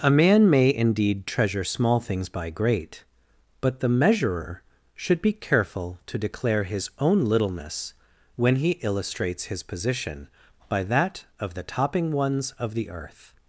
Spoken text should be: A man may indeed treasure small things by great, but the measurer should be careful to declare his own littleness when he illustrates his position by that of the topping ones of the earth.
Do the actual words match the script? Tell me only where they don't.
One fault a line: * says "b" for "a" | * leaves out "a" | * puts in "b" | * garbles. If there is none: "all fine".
all fine